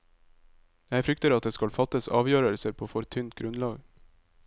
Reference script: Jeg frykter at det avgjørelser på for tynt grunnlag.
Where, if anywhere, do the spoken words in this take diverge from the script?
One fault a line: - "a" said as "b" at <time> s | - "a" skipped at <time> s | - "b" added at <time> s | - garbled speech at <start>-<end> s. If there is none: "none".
- "skal fattes" added at 1.5 s